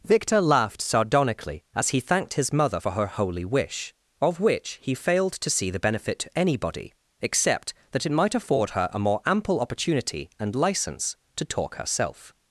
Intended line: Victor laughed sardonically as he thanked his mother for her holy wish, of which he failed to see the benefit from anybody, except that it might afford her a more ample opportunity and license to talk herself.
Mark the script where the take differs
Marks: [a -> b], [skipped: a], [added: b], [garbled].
Victor laughed sardonically as he thanked his mother for her holy wish, of which he failed to see the benefit [from -> to] anybody, except that it might afford her a more ample opportunity and license to talk herself.